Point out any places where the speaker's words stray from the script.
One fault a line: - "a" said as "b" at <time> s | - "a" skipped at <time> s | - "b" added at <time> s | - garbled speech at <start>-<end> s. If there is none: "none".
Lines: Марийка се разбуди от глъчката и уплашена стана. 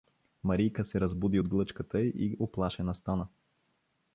none